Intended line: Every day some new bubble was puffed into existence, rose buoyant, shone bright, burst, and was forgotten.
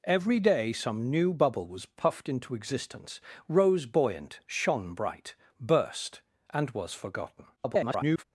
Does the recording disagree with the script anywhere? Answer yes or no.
yes